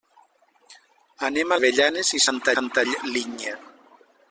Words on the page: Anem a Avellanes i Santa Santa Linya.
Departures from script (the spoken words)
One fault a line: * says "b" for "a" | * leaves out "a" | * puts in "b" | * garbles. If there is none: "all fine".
all fine